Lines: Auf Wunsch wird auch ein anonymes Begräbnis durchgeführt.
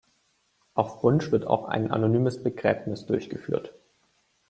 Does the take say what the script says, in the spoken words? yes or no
yes